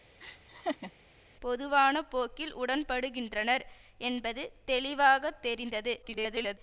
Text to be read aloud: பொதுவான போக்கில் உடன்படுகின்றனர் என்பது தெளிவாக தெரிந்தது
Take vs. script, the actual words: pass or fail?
fail